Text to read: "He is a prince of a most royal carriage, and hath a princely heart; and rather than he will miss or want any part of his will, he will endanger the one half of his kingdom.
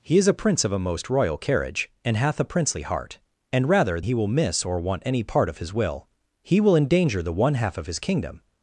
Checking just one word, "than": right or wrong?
wrong